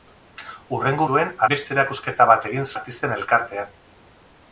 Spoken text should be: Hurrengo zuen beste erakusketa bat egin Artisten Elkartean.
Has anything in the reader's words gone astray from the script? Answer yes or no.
no